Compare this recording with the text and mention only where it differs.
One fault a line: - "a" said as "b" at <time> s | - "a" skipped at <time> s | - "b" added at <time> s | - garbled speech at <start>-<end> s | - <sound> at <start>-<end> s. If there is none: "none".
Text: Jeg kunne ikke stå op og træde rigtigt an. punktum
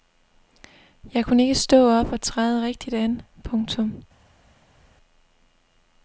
none